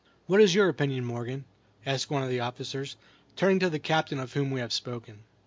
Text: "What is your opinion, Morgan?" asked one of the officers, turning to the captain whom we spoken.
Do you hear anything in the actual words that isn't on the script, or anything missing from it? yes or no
yes